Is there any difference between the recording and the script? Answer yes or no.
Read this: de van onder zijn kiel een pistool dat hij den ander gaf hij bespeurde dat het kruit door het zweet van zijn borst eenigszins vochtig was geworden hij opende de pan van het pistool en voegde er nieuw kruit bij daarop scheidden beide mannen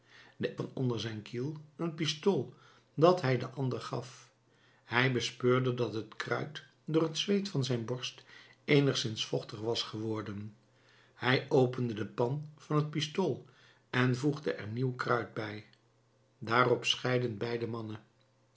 no